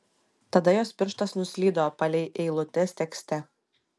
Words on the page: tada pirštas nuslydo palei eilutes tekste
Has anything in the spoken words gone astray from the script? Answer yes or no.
yes